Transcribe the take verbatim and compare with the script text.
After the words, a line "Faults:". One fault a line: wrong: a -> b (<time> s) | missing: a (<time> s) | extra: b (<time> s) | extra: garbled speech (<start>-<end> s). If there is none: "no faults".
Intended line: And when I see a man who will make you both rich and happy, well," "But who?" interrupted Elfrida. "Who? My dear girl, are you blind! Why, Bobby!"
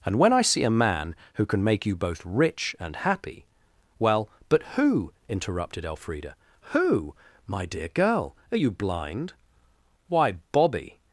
And when I see a man who can make you both rich and happy, well," "But who?" interrupted Elfrida. "Who? My dear girl, are you blind! Why, Bobby!"
Faults:
wrong: will -> can (1.4 s)